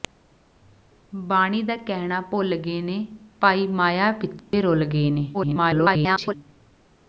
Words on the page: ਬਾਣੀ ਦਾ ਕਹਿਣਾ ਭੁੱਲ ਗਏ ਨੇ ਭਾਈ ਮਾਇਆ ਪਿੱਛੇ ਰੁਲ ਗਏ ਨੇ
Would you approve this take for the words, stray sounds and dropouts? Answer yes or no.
no